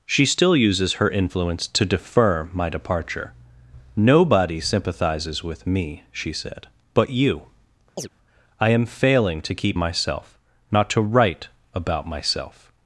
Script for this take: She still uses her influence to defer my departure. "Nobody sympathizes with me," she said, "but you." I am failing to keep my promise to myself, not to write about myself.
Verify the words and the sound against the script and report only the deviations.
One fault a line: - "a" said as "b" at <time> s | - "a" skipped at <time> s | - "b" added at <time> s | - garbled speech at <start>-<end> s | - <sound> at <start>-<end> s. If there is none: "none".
- chirp at 8.0-8.1 s
- "my promise to" skipped at 9.8 s